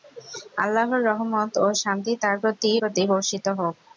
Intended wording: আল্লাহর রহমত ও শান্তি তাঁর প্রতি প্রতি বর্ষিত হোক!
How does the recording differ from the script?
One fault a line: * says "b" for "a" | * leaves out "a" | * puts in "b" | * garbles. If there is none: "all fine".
all fine